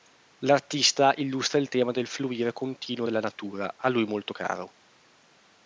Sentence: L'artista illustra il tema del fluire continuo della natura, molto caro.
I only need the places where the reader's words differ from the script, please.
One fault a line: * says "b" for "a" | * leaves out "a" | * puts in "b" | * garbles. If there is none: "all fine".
* puts in "a lui"